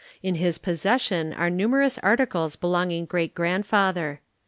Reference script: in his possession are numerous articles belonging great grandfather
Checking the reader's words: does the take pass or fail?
pass